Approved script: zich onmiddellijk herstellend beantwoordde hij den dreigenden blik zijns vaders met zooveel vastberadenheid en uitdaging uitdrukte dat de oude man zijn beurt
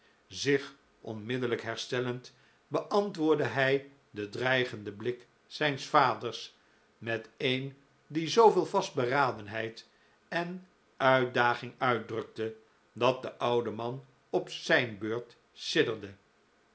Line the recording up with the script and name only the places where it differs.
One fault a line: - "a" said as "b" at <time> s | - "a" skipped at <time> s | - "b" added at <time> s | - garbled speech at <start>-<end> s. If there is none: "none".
- "een die" added at 7.4 s
- "op" added at 14.3 s